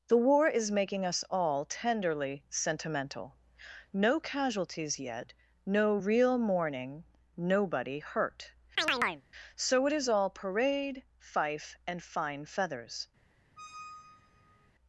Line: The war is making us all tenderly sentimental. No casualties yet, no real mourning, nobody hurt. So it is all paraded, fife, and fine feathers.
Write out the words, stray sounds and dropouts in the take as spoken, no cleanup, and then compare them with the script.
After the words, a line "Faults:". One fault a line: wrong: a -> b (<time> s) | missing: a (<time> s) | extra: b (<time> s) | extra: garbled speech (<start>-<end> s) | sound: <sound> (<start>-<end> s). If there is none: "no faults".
The war is making us all tenderly sentimental. No casualties yet, no real mourning, nobody hurt. So it is all parade, fife, and fine feathers.
Faults:
sound: chirp (8.8-9.2 s)
wrong: paraded -> parade (10.3 s)
sound: squeak (13.6-14.7 s)